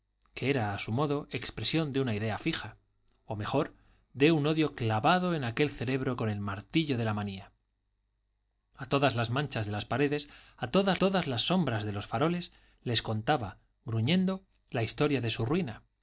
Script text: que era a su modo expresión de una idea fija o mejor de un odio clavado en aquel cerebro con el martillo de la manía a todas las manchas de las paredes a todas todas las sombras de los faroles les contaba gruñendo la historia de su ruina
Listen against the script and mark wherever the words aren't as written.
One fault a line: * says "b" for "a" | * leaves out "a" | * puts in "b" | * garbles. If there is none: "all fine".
all fine